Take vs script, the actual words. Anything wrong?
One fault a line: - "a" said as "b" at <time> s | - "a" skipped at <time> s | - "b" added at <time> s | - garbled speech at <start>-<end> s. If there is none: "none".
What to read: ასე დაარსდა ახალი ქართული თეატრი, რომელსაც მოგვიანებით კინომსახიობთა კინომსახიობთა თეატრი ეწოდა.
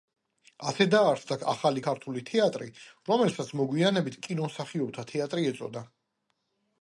- "კინომსახიობთა" skipped at 5.1 s